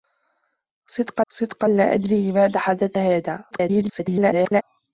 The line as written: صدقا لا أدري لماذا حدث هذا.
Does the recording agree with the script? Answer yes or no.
no